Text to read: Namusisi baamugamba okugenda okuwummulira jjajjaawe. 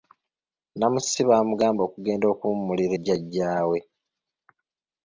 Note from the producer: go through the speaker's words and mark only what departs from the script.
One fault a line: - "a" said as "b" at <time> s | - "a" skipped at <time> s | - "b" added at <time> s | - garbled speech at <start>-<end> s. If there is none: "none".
none